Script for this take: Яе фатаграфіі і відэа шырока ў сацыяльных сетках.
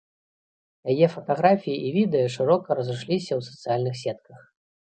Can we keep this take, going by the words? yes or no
no